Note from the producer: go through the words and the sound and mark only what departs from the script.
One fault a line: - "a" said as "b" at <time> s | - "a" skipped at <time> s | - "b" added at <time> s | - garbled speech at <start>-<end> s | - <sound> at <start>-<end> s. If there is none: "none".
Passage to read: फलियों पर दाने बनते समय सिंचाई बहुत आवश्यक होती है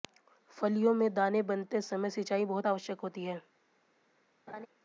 - "पर" said as "में" at 0.9 s
- laugh at 4.5-4.7 s